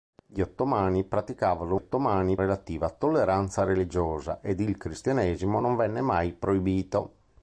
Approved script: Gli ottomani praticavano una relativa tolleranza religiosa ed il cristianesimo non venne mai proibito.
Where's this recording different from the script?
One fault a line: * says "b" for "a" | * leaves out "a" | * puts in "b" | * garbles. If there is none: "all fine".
* says "ottomani" for "una"